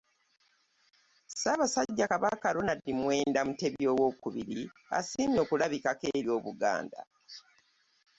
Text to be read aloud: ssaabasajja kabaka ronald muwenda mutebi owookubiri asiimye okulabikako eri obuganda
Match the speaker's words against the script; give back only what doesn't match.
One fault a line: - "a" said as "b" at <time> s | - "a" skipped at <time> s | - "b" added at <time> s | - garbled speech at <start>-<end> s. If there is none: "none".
none